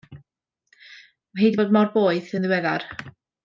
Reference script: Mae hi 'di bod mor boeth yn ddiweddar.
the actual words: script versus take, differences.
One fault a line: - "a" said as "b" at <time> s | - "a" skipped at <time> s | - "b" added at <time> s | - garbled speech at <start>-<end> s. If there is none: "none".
none